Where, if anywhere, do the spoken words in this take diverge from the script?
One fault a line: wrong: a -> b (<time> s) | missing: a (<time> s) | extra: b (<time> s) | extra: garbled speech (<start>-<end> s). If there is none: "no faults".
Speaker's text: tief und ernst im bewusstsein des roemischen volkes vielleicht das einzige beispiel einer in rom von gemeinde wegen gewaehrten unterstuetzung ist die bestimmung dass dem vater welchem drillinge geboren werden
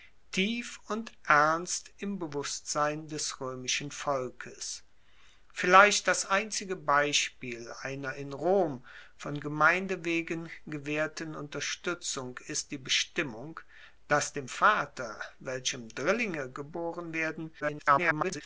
extra: garbled speech (17.6-18.4 s)